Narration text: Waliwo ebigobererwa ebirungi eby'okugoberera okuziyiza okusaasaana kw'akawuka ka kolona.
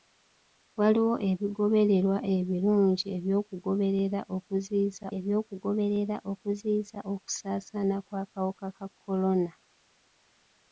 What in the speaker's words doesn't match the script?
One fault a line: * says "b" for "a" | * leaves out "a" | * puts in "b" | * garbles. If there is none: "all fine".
* puts in "eby'okugoberera okuziyiza"